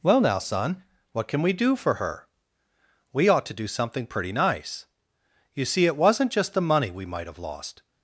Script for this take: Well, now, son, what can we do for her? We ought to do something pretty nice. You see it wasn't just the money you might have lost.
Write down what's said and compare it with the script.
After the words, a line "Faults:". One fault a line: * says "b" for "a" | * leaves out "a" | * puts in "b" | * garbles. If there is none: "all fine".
Well, now, son, what can we do for her? We ought to do something pretty nice. You see it wasn't just the money we might have lost.
Faults:
* says "we" for "you"